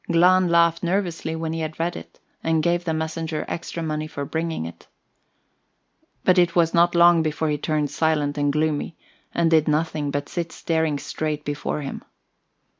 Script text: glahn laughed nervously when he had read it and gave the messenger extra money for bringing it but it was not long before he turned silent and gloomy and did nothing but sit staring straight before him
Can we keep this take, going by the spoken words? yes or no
yes